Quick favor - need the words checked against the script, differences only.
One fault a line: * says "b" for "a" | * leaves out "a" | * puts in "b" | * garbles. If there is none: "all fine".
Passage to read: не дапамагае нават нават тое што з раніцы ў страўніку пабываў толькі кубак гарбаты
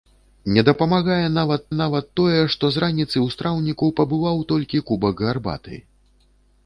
all fine